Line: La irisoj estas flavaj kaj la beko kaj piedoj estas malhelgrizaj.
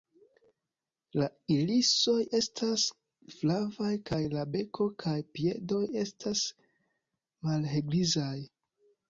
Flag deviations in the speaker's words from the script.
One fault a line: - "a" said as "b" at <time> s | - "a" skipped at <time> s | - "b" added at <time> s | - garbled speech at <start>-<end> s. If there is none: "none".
none